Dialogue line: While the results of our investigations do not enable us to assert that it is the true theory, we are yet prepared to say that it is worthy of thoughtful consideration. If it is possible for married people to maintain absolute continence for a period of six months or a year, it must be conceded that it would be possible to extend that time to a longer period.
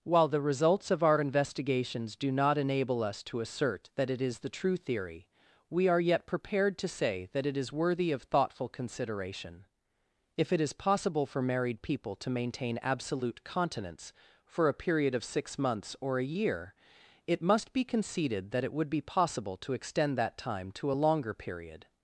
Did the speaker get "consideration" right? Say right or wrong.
right